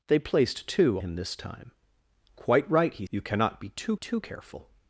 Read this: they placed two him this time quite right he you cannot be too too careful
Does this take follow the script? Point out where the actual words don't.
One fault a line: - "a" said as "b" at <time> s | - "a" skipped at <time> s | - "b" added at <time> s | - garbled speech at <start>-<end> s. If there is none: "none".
none